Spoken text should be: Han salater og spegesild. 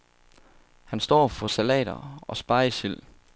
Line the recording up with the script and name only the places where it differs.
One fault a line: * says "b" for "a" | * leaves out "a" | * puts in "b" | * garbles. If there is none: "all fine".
* puts in "står for"